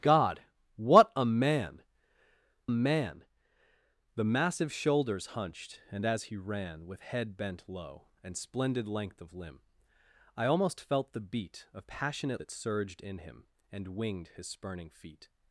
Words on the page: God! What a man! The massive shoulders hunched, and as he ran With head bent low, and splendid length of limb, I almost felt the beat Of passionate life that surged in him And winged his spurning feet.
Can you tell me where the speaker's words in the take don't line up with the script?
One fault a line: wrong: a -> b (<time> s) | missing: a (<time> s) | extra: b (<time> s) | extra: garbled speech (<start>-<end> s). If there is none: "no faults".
extra: man (2.7 s)
missing: life (12.4 s)